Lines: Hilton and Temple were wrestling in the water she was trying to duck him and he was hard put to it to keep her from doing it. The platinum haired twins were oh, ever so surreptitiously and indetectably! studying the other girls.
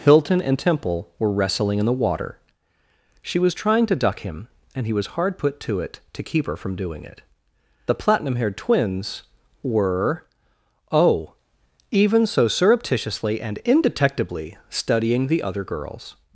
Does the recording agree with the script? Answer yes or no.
no